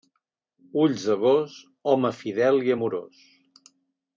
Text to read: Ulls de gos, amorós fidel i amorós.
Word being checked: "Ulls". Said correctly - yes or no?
yes